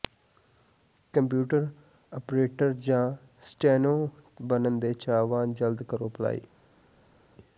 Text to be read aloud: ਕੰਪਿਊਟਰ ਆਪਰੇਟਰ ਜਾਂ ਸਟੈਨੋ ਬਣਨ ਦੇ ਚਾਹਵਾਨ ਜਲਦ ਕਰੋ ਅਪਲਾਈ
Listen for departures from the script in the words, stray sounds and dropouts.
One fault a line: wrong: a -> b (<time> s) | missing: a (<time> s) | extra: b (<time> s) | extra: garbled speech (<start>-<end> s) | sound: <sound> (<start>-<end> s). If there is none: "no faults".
no faults